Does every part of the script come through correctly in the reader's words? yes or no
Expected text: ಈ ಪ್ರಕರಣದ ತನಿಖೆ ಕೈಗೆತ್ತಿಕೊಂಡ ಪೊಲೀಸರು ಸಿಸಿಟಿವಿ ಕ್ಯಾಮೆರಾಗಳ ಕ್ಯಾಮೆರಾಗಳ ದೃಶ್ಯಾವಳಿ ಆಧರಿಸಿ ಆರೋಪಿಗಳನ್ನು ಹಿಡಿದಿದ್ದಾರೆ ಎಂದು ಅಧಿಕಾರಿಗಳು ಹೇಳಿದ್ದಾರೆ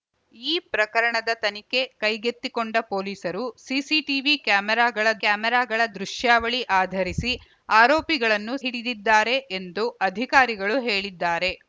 yes